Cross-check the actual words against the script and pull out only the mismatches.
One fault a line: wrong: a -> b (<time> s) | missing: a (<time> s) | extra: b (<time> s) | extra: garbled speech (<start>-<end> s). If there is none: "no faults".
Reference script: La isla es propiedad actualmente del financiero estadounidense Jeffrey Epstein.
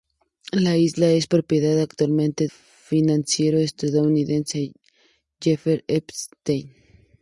missing: del (2.5 s)